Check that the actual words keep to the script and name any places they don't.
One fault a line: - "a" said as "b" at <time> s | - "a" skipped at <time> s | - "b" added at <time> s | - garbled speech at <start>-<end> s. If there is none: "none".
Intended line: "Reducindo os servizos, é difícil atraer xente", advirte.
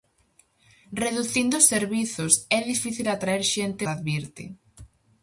none